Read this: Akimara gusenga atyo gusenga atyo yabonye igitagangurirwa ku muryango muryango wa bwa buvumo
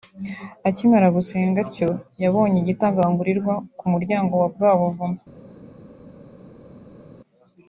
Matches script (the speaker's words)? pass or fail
fail